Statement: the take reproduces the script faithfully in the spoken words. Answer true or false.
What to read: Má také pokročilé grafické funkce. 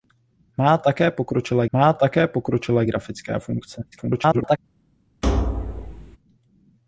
false